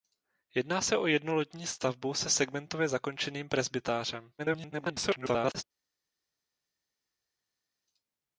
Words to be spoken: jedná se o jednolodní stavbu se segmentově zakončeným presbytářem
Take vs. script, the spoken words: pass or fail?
fail